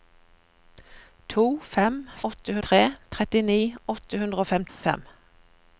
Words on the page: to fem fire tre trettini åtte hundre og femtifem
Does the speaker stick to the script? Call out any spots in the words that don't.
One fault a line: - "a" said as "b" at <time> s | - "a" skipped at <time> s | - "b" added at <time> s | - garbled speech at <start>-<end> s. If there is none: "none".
- "fire" said as "åtte" at 2.3 s